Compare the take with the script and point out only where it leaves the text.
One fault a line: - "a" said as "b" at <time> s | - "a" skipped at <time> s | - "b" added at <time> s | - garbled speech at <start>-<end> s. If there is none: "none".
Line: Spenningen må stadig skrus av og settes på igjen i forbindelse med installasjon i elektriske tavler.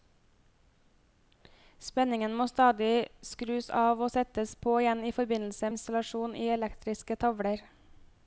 - "med" skipped at 5.7 s